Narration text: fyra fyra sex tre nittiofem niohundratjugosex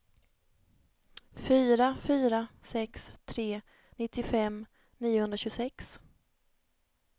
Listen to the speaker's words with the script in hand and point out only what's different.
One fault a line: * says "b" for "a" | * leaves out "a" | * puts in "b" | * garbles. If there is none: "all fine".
all fine